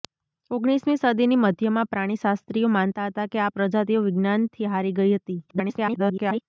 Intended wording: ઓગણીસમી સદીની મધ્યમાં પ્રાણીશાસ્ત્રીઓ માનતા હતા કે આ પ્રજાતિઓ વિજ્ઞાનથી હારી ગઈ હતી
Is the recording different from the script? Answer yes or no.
yes